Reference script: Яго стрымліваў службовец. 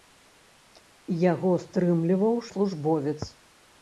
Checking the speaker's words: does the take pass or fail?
pass